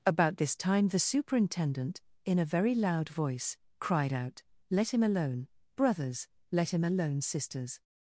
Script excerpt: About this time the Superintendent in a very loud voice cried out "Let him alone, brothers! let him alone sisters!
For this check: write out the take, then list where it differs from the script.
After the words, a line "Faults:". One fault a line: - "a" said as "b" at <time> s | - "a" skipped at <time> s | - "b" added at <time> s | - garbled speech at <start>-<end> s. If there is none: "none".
About this time the Superintendent in a very loud voice cried out "Let him alone, brothers! let him alone sisters!
Faults:
none